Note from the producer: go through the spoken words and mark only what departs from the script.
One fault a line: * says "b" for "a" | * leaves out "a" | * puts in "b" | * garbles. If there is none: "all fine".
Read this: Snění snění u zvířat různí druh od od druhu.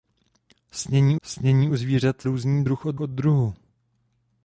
all fine